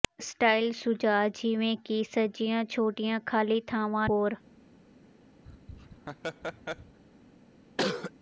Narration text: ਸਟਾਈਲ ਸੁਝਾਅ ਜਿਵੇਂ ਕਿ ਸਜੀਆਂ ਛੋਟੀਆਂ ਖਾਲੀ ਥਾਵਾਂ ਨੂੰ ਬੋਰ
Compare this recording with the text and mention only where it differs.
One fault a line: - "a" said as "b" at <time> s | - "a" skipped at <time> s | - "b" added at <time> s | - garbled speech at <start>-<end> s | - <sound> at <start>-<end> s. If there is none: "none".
- "ਨੂੰ" skipped at 4.1 s
- laugh at 5.4-7.0 s
- cough at 7.8-8.1 s